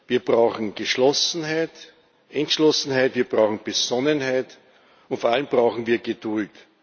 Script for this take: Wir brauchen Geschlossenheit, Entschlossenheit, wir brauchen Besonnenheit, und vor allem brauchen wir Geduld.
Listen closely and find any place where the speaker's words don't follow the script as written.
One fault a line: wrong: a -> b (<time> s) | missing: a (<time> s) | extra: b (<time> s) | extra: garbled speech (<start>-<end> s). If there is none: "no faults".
no faults